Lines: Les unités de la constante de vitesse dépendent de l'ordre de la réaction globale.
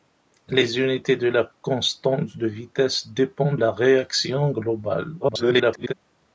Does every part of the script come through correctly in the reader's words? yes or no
no